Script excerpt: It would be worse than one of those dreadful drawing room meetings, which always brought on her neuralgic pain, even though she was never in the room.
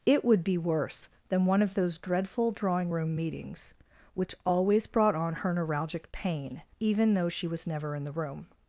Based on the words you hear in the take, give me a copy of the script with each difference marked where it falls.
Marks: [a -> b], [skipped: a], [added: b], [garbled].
It would be worse than one of those dreadful drawing room meetings, which always brought on her neuralgic pain, even though she was never in the room.